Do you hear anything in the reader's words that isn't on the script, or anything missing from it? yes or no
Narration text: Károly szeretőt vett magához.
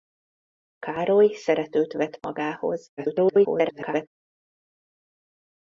yes